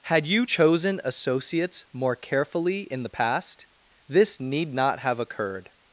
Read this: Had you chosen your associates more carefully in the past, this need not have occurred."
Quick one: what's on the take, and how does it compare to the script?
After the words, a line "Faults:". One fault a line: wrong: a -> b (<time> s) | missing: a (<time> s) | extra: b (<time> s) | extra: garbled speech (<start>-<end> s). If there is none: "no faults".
Had you chosen associates more carefully in the past, this need not have occurred."
Faults:
missing: your (1.0 s)